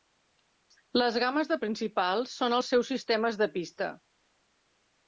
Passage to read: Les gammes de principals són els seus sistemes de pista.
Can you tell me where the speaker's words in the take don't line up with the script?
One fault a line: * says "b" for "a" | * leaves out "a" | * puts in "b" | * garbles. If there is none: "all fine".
all fine